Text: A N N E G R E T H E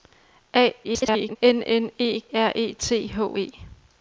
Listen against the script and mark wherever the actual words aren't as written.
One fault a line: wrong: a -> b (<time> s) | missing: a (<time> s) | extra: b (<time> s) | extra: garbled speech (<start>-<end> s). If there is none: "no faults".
extra: garbled speech (0.8-1.4 s)
missing: G (2.2 s)